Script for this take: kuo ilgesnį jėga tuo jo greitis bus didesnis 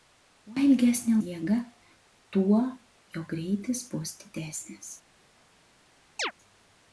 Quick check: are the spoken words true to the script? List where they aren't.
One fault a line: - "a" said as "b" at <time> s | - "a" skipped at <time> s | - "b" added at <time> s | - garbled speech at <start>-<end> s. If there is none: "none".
none